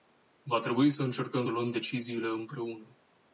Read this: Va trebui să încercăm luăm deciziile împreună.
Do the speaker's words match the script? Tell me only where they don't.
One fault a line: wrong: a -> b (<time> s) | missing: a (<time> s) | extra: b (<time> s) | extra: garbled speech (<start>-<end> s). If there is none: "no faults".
no faults